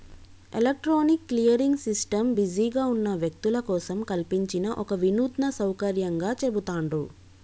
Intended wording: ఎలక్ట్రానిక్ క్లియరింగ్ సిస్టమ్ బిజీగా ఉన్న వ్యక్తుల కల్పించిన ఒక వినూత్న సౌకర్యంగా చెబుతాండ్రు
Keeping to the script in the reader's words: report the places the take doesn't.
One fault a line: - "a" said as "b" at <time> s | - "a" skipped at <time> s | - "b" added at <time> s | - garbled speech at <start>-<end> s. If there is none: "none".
- "కోసం" added at 3.7 s